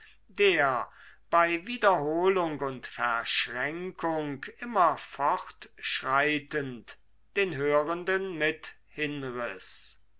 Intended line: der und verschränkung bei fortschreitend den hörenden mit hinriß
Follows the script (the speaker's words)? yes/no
no